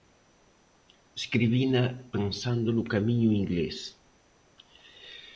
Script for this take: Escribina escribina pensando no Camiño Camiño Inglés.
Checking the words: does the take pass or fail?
fail